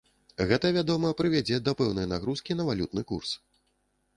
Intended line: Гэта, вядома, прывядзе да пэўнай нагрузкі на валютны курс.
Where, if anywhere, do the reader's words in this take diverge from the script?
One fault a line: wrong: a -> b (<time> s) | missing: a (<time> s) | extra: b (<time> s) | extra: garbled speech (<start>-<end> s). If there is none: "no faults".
no faults